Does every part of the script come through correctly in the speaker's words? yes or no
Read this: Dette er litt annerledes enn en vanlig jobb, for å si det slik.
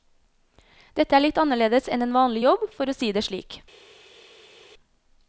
yes